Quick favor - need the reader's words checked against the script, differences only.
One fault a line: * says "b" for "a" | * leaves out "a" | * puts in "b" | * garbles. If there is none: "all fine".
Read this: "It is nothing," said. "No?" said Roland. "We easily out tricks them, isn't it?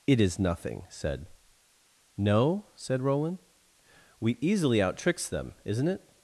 all fine